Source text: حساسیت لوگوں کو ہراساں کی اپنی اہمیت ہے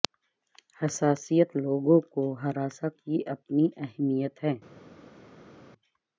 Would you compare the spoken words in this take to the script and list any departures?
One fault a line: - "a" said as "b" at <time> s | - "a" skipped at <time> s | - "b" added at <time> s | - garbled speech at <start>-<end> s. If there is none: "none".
none